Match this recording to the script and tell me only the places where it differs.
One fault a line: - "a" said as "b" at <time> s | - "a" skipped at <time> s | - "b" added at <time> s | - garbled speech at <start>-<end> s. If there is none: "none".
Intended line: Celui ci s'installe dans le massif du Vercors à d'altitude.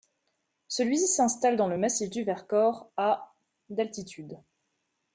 none